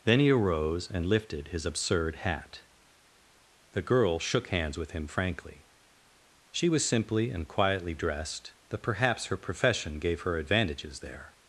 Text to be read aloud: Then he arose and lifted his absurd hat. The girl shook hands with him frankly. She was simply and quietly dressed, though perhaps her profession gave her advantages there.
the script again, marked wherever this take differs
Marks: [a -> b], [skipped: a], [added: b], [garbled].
Then he arose and lifted his absurd hat. The girl shook hands with him frankly. She was simply and quietly dressed, though perhaps her profession gave her advantages there.